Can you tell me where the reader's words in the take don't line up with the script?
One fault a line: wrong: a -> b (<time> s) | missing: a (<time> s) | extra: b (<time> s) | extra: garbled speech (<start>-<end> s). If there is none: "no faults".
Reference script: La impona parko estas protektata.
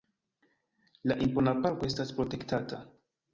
no faults